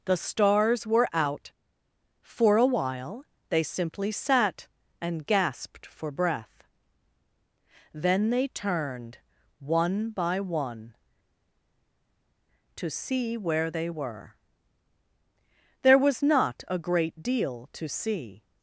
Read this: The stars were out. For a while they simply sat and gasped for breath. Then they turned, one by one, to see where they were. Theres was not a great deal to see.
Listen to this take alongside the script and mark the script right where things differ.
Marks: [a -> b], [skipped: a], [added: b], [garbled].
The stars were out. For a while they simply sat and gasped for breath. Then they turned, one by one, to see where they were. [Theres -> There] was not a great deal to see.